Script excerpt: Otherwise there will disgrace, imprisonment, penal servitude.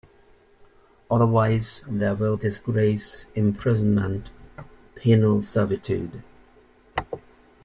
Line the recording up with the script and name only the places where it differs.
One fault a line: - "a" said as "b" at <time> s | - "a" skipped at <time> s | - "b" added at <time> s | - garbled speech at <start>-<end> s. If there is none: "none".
none